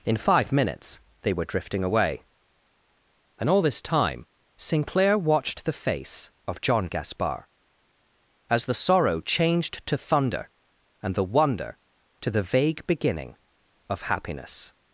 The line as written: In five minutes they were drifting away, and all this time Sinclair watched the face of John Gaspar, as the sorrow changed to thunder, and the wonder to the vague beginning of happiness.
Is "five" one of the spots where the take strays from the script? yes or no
no